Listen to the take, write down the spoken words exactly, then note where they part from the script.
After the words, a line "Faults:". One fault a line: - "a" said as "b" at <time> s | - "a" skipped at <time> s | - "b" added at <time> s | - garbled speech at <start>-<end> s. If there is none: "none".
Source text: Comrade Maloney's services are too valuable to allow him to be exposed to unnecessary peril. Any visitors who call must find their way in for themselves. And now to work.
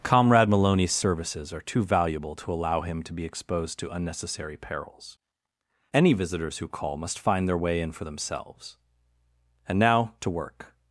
Comrade Maloney's services are too valuable to allow him to be exposed to unnecessary perils. Any visitors who call must find their way in for themselves. And now to work.
Faults:
- "peril" said as "perils" at 4.6 s